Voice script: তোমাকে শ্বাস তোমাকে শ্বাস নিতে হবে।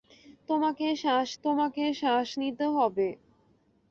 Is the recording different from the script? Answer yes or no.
no